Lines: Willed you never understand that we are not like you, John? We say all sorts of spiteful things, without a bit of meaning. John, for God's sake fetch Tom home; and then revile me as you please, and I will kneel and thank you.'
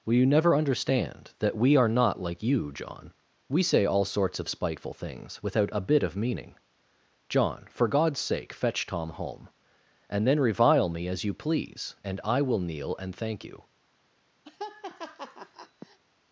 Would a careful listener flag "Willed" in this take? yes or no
yes